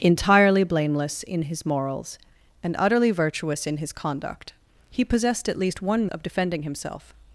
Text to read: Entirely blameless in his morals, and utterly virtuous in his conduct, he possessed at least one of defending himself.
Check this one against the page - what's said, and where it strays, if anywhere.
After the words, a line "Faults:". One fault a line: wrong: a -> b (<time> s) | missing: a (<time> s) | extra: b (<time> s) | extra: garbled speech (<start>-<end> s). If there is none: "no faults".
Entirely blameless in his morals, and utterly virtuous in his conduct, he possessed at least one of defending himself.
Faults:
no faults